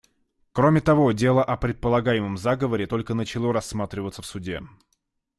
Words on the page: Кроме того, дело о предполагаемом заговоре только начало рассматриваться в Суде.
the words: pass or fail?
pass